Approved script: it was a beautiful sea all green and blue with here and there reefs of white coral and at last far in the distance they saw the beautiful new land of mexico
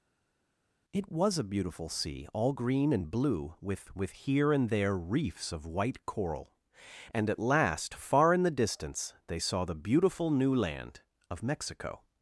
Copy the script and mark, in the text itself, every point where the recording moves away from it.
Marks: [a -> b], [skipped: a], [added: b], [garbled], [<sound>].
it was a beautiful sea all green and blue with [added: with] here and there reefs of white coral and at last far in the distance they saw the beautiful new land of mexico